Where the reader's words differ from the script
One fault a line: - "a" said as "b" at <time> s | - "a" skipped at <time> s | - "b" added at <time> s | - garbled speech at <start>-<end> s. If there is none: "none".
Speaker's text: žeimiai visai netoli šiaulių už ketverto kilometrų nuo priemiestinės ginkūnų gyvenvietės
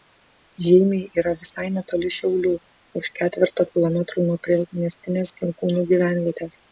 - "yra" added at 1.2 s